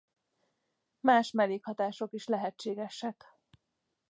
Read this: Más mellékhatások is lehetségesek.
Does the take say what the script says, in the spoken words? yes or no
yes